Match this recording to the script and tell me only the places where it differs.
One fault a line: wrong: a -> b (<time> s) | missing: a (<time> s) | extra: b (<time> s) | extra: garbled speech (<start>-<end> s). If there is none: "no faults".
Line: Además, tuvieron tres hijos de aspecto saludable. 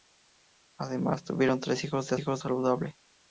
wrong: aspecto -> hijos (2.2 s)